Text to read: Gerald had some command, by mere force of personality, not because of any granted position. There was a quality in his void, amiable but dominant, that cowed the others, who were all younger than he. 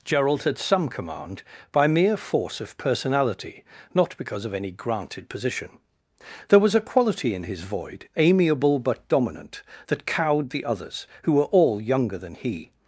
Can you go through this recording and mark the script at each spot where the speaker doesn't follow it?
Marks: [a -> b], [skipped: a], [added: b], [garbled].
Gerald had some command, by mere force of personality, not because of any granted position. There was a quality in his void, amiable but dominant, that cowed the others, who were all younger than he.